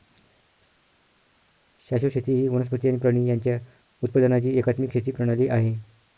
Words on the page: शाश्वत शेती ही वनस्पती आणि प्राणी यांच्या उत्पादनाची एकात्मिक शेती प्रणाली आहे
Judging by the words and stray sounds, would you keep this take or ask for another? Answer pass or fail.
pass